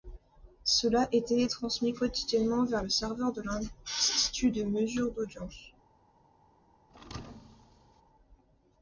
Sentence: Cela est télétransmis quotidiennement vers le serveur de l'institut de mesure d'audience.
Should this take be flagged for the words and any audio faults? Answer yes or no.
yes